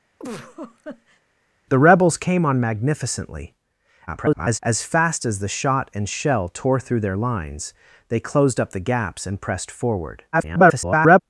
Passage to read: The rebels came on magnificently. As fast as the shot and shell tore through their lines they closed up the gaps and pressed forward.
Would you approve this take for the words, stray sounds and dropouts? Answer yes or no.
no